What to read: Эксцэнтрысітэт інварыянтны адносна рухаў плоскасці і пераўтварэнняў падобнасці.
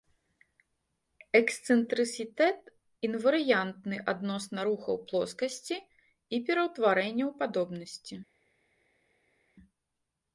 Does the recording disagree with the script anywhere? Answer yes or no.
no